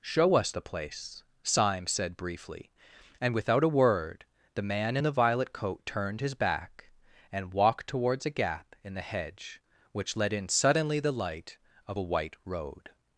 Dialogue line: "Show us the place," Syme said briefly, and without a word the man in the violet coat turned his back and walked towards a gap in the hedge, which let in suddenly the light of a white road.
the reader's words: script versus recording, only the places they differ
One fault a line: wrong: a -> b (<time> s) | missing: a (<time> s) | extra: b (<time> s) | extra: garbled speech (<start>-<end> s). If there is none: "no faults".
no faults